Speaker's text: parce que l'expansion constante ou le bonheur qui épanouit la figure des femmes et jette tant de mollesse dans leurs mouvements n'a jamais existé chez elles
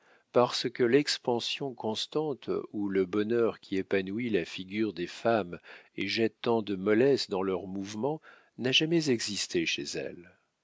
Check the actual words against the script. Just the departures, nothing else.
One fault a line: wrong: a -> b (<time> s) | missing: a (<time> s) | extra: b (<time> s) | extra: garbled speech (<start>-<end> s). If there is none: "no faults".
no faults